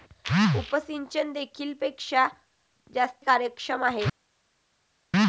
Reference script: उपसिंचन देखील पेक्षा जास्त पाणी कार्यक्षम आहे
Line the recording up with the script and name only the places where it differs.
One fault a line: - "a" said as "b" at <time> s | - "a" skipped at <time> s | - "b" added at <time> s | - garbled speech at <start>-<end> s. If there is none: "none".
- "पाणी" skipped at 3.2 s